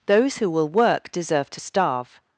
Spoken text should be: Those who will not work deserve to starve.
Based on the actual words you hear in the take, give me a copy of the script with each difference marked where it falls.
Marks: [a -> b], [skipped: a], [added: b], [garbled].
Those who will [skipped: not] work deserve to starve.